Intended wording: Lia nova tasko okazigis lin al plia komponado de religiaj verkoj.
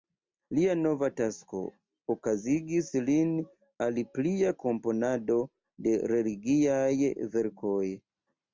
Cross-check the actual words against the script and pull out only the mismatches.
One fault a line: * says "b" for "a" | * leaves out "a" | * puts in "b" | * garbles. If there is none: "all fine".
all fine